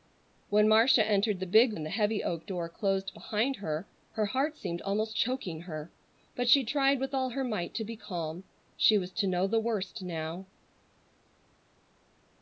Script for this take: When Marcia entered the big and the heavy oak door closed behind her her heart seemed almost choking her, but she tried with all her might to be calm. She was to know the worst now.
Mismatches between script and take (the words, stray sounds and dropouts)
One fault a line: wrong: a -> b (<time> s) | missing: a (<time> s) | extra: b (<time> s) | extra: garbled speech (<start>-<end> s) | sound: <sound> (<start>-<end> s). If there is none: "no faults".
no faults